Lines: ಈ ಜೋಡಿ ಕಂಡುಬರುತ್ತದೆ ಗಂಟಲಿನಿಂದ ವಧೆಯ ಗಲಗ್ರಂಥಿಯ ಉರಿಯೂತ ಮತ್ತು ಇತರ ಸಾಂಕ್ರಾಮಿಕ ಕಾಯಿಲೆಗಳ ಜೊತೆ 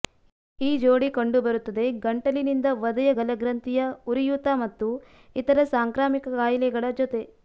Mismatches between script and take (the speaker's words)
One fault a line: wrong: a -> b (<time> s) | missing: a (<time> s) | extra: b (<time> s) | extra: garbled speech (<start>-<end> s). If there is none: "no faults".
no faults